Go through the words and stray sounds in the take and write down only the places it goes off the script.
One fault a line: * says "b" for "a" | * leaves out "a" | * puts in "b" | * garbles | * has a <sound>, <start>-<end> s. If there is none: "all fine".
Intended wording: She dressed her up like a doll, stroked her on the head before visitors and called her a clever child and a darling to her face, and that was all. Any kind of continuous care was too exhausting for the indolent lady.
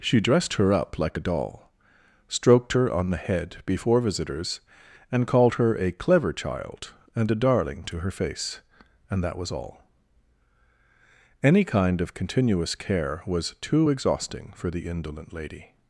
all fine